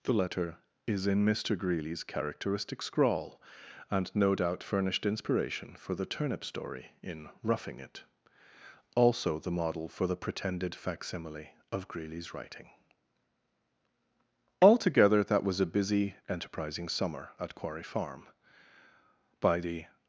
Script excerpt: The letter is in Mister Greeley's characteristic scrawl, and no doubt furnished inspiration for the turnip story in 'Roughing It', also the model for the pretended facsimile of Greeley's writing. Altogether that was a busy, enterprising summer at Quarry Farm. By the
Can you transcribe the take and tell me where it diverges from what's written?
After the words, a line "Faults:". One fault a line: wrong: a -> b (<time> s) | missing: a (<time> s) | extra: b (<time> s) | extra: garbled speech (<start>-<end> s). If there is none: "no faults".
The letter is in Mister Greeley's characteristic scrawl, and no doubt furnished inspiration for the turnip story in 'Roughing It', also the model for the pretended facsimile of Greeley's writing. Altogether that was a busy, enterprising summer at Quarry Farm. By the
Faults:
no faults